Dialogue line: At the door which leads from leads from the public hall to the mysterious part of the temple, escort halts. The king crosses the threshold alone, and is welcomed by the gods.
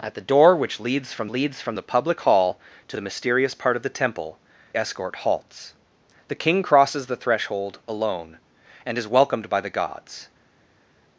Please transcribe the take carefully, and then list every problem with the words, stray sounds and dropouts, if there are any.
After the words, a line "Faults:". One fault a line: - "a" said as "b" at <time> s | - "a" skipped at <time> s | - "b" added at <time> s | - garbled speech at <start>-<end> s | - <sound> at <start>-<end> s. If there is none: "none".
At the door which leads from leads from the public hall to the mysterious part of the temple, escort halts. The king crosses the threshold alone, and is welcomed by the gods.
Faults:
none